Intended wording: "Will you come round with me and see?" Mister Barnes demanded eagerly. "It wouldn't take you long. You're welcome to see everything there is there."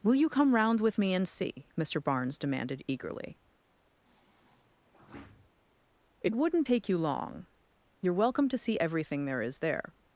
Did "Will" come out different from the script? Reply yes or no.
no